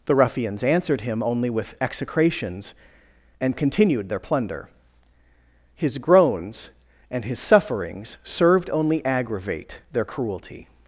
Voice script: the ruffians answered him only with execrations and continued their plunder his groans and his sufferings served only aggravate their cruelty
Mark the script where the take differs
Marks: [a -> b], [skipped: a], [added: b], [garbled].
the ruffians answered him only with execrations and continued their plunder his groans and his sufferings served only aggravate their cruelty